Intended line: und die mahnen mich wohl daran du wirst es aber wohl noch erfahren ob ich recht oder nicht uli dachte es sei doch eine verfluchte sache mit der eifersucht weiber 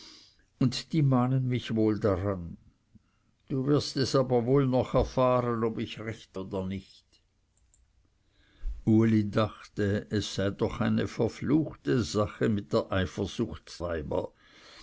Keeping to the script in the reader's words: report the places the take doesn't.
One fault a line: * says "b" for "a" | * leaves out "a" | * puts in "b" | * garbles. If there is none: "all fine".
all fine